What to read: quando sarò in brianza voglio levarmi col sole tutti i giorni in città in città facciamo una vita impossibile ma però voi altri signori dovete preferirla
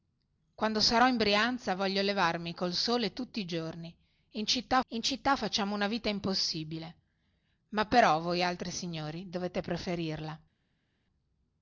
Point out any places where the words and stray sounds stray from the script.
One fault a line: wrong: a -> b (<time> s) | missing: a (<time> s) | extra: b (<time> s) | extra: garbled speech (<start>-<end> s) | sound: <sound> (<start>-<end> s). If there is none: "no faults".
no faults